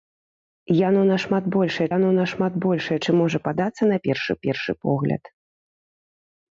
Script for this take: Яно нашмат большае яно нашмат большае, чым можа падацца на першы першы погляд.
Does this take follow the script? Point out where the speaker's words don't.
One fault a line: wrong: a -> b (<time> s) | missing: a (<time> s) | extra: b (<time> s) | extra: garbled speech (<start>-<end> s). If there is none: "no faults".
no faults